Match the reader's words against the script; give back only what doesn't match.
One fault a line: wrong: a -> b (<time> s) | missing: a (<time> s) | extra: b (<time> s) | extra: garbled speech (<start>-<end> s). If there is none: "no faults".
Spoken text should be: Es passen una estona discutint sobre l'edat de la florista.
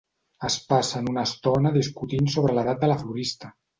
no faults